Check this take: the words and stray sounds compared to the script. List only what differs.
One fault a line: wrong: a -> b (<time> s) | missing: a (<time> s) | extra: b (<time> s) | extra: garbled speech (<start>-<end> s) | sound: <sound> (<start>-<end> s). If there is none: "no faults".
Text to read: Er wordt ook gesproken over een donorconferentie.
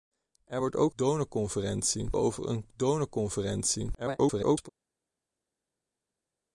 wrong: gesproken -> donorconferentie (1.0 s)
extra: garbled speech (3.9-4.7 s)